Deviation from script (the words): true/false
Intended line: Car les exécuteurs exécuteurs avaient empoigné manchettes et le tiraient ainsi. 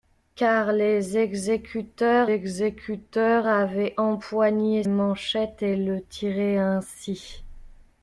false